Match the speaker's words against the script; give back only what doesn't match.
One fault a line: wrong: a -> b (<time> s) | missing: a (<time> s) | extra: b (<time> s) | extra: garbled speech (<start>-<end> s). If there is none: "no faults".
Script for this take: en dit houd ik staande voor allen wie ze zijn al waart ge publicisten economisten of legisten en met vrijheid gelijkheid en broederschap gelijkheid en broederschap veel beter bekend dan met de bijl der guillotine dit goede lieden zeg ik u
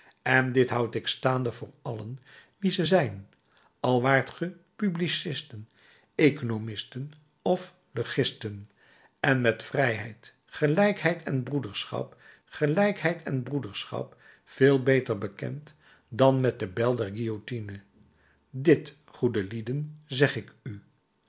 no faults